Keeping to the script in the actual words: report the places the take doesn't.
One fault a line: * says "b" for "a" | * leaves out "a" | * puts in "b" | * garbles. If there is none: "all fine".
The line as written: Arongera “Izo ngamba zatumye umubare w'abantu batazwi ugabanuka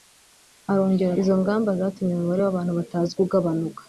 all fine